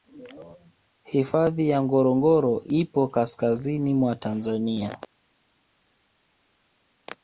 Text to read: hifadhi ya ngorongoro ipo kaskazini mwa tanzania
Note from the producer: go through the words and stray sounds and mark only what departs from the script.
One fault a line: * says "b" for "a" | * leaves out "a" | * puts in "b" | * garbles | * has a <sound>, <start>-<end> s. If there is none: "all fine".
all fine